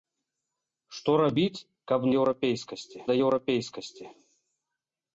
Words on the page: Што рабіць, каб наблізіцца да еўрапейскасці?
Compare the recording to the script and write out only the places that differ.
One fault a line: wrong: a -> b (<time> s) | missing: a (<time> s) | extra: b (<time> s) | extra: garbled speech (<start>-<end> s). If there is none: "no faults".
wrong: наблізіцца -> еўрапейскасці (2.2 s)